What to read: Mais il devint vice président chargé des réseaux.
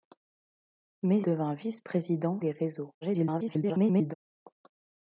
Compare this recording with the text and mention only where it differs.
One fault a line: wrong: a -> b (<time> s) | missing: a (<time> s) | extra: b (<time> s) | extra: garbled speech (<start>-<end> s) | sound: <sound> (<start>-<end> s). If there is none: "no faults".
missing: il (1.2 s)
missing: chargé (2.4 s)
extra: garbled speech (3.0-4.1 s)